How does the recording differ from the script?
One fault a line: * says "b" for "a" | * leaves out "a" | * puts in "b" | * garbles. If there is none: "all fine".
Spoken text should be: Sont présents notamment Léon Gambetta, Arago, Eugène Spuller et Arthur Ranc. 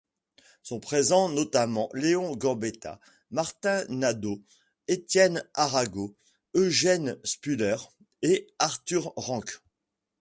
* puts in "Martin Nadaud Étienne"